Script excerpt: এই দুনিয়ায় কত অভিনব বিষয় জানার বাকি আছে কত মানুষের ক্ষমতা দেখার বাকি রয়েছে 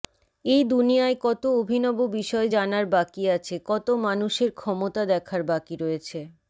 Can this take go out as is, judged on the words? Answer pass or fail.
pass